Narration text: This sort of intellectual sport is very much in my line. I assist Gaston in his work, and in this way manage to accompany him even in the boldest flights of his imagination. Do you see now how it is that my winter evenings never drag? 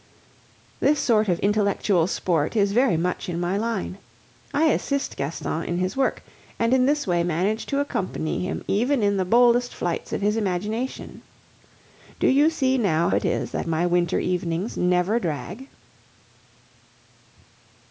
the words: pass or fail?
fail